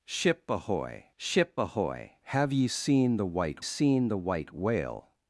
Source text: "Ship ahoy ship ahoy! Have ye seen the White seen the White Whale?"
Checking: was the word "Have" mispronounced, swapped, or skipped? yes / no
no